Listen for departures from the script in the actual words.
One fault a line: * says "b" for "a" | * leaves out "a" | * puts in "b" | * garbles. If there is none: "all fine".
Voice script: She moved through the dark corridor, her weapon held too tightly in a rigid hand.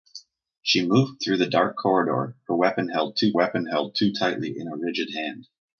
* puts in "weapon held too"